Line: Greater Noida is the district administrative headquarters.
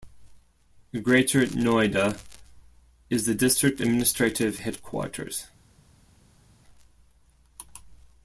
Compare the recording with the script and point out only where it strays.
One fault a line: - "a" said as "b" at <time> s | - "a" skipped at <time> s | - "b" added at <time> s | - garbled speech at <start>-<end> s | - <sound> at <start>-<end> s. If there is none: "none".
none